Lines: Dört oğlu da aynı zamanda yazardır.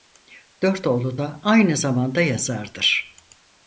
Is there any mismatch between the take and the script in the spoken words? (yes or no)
no